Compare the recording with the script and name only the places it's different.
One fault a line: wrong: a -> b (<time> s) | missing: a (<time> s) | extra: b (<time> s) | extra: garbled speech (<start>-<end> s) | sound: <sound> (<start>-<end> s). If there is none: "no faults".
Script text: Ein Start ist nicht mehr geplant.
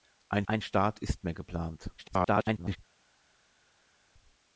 extra: ein (0.5 s)
missing: nicht (1.2 s)
extra: garbled speech (2.0-2.8 s)